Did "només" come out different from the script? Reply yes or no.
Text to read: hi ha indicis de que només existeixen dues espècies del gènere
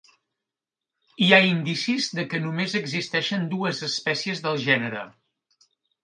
no